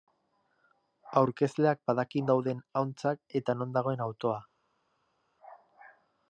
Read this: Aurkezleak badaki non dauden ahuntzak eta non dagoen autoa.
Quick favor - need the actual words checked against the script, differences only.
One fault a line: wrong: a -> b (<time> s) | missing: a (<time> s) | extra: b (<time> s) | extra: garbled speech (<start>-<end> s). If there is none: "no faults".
missing: non (2.2 s)